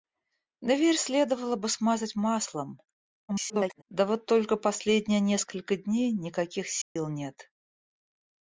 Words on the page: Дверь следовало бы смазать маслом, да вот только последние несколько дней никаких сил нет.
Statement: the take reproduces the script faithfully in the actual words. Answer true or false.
false